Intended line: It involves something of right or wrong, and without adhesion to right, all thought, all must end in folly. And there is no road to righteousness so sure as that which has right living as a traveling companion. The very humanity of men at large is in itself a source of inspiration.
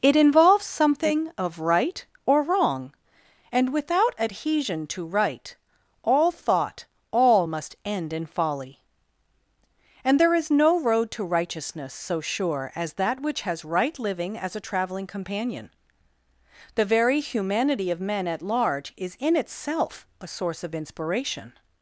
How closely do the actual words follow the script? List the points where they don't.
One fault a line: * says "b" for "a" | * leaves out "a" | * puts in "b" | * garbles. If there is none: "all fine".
all fine